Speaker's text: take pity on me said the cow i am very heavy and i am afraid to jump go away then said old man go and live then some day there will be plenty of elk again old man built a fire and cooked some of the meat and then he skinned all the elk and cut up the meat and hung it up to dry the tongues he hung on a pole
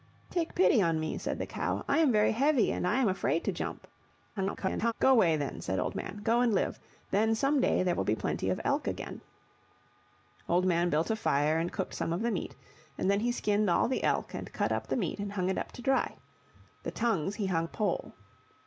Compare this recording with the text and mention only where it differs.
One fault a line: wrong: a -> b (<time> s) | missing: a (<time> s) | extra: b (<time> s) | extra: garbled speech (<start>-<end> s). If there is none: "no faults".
extra: garbled speech (4.4-4.9 s)
missing: on (17.7 s)